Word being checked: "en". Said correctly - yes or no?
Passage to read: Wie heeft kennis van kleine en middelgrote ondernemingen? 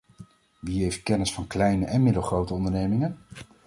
yes